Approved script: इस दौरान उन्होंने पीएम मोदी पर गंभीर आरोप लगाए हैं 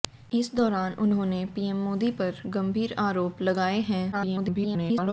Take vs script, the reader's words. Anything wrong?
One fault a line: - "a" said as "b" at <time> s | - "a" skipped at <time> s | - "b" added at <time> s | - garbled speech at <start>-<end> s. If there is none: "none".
- garbled speech at 4.1-5.1 s